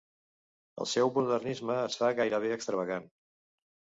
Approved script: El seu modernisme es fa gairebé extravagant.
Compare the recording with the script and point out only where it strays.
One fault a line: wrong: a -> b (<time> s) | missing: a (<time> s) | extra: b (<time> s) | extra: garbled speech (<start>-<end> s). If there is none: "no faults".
no faults